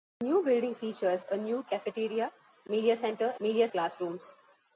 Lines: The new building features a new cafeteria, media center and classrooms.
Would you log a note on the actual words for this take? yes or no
yes